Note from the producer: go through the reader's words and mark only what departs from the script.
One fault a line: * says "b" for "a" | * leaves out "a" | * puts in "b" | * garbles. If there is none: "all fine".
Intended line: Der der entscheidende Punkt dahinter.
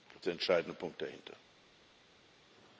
all fine